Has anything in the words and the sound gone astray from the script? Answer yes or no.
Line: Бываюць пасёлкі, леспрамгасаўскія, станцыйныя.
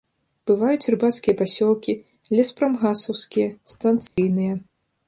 yes